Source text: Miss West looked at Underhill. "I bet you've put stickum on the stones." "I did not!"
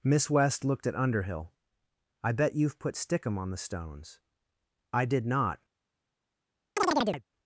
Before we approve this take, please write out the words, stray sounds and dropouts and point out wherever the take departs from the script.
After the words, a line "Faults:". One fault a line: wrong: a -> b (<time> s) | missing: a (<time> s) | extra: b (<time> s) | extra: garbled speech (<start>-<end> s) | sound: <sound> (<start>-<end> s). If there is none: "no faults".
Miss West looked at Underhill. "I bet you've put stickum on the stones." "I did not!"
Faults:
sound: chirp (6.8-7.2 s)